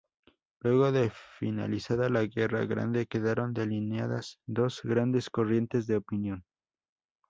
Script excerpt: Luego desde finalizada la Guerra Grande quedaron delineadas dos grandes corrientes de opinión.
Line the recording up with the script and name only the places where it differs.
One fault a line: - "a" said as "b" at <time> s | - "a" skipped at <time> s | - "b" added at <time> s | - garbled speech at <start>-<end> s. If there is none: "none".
- "desde" said as "de" at 0.9 s